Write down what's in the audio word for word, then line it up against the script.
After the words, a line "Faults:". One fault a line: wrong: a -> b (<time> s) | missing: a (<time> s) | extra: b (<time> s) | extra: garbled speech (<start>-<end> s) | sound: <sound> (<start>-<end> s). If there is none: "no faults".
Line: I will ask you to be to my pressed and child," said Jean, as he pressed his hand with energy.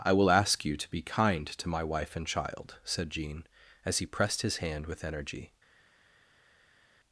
I will ask you to be kind to my wife and child," said Jean, as he pressed his hand with energy.
Faults:
extra: kind (1.0 s)
wrong: pressed -> wife (1.8 s)